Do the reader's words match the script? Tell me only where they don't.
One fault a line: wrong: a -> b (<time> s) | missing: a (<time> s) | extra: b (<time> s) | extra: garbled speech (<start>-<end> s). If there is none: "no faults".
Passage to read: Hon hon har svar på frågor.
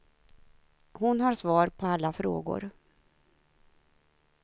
missing: hon (1.2 s)
extra: alla (1.9 s)